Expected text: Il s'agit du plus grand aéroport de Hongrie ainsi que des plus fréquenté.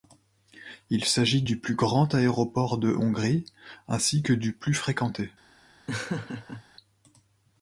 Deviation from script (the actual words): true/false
true